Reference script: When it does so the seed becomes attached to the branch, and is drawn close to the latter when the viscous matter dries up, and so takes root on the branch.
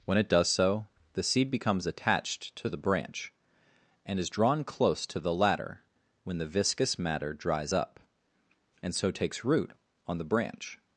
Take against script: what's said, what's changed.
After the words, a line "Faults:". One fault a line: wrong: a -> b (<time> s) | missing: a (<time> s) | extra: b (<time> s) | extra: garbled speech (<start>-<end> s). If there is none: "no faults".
When it does so the seed becomes attached to the branch, and is drawn close to the latter when the viscous matter dries up, and so takes root on the branch.
Faults:
no faults